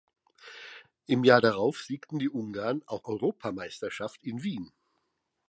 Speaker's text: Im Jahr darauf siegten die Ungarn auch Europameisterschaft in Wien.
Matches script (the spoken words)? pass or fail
pass